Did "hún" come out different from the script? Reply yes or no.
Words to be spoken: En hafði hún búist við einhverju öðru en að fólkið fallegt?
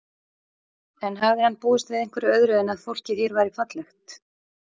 yes